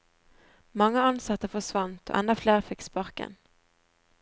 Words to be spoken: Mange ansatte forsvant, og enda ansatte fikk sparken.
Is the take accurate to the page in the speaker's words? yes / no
no